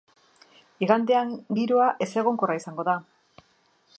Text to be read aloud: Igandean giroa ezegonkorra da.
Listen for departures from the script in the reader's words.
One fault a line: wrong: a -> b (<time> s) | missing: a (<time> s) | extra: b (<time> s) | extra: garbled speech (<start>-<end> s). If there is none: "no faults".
extra: izango (2.6 s)